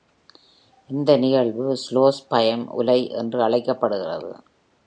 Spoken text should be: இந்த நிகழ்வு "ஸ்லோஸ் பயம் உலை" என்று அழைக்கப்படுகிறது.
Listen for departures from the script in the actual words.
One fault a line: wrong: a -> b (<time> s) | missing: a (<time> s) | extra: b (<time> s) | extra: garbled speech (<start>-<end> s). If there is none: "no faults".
no faults